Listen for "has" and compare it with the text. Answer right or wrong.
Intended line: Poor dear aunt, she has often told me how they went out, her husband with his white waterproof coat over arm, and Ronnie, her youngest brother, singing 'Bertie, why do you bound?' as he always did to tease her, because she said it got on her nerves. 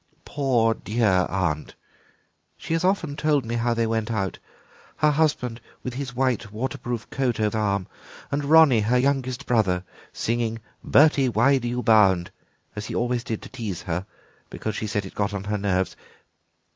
right